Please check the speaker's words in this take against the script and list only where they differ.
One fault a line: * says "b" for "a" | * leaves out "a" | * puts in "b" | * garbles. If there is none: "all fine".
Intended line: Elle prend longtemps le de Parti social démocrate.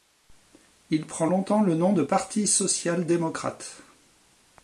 * says "Il" for "Elle"
* puts in "nom"